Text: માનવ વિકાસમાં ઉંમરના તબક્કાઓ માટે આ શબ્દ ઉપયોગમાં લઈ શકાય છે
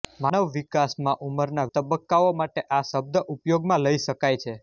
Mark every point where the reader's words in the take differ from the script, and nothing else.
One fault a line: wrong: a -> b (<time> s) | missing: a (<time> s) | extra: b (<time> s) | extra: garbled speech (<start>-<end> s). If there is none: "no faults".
no faults